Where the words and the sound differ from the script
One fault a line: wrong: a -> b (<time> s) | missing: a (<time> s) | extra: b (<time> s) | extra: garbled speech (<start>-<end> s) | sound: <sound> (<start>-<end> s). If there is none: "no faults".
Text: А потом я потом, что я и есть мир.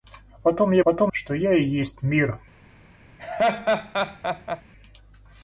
sound: laugh (3.2-4.6 s)